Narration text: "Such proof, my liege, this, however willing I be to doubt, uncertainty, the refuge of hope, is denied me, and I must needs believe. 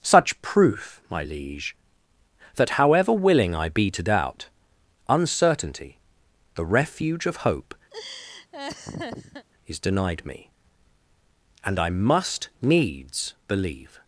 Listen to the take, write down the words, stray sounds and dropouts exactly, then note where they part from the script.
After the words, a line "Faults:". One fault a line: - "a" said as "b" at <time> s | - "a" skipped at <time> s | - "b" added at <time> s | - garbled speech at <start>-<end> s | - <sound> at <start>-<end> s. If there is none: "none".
"Such proof, my liege, that, however willing I be to doubt, uncertainty, the refuge of hope, is denied me, and I must needs believe.
Faults:
- "this" said as "that" at 2.5 s
- laugh at 7.9-9.5 s